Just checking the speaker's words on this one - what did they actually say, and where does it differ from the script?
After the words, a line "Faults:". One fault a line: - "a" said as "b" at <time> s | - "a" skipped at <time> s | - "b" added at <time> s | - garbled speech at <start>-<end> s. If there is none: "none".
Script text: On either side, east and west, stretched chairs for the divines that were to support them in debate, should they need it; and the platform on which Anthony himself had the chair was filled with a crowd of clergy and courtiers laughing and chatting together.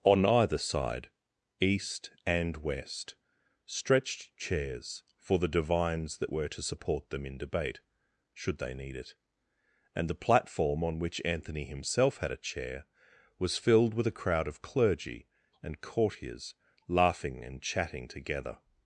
On either side, east and west, stretched chairs for the divines that were to support them in debate, should they need it; and the platform on which Anthony himself had a chair was filled with a crowd of clergy and courtiers laughing and chatting together.
Faults:
- "the" said as "a" at 12.3 s